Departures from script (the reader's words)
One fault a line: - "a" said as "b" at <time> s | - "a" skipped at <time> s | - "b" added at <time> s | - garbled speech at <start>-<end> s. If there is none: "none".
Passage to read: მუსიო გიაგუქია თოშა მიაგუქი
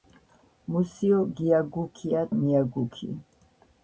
- "თოშა" skipped at 2.2 s